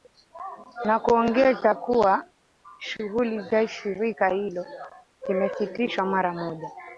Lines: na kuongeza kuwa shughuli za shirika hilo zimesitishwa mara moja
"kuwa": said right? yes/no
yes